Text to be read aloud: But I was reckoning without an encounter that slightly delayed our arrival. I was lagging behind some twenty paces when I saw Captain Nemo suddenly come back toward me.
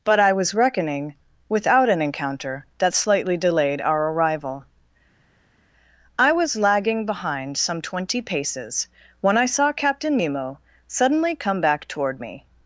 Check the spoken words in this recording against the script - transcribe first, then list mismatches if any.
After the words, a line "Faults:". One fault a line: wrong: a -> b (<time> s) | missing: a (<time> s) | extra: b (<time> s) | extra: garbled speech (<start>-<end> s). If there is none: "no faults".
But I was reckoning without an encounter that slightly delayed our arrival. I was lagging behind some twenty paces when I saw Captain Nemo suddenly come back toward me.
Faults:
no faults